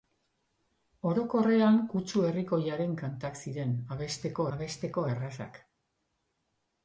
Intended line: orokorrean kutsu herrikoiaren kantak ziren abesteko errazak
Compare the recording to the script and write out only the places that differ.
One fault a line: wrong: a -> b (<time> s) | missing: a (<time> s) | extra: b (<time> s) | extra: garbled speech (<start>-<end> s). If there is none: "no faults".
extra: abesteko (4.6 s)